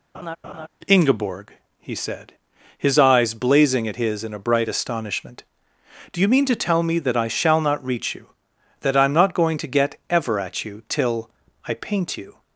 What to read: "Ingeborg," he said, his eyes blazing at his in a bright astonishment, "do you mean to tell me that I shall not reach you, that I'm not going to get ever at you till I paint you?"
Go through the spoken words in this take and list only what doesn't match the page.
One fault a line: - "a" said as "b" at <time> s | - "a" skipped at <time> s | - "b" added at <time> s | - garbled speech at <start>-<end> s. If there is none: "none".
none